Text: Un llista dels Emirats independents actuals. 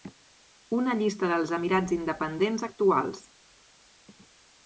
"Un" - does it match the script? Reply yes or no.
no